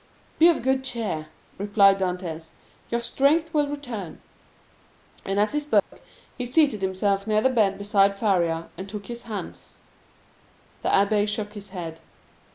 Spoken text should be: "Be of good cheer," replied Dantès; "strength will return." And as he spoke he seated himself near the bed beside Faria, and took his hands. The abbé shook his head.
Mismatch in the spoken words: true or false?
true